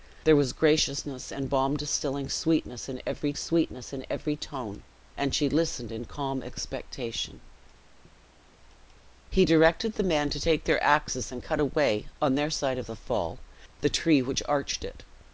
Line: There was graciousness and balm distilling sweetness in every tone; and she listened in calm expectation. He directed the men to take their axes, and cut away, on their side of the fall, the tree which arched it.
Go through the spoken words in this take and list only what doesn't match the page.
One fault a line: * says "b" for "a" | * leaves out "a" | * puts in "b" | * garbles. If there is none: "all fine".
* puts in "sweetness in every"